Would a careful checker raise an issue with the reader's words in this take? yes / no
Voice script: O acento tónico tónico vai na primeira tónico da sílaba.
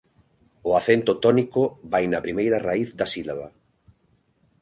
yes